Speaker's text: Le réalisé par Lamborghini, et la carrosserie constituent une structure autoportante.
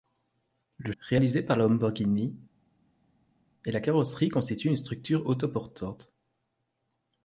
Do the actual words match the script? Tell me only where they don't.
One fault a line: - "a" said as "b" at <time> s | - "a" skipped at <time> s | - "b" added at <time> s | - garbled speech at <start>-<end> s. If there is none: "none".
none